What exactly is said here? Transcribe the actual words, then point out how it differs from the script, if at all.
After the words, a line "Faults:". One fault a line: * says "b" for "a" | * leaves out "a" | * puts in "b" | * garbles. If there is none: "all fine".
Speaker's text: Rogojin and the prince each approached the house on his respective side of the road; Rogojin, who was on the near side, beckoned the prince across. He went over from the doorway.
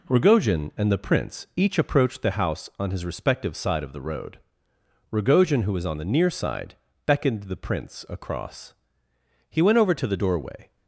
Rogojin and the prince each approached the house on his respective side of the road; Rogojin, who was on the near side, beckoned the prince across. He went over to the doorway.
Faults:
* says "to" for "from"